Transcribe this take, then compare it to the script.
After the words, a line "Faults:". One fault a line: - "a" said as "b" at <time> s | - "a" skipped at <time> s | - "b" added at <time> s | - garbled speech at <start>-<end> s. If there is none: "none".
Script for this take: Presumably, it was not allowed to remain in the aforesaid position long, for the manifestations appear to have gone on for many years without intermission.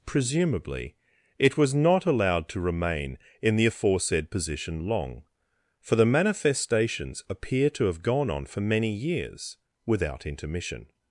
Presumably, it was not allowed to remain in the aforesaid position long, for the manifestations appear to have gone on for many years without intermission.
Faults:
none